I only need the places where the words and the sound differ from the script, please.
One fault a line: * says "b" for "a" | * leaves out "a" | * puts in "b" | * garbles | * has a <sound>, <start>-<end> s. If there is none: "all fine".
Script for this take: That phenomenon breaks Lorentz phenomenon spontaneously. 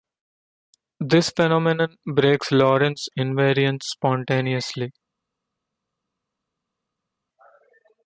* says "This" for "That"
* says "invariance" for "phenomenon"